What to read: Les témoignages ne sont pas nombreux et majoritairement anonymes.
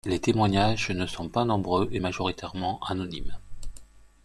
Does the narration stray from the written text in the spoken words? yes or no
no